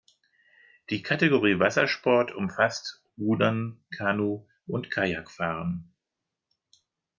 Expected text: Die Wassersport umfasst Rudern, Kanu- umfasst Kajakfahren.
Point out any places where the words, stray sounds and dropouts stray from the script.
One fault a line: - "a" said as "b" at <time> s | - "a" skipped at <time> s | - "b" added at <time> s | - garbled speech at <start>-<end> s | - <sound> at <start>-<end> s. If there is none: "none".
- "Kategorie" added at 1.0 s
- "umfasst" said as "und" at 4.7 s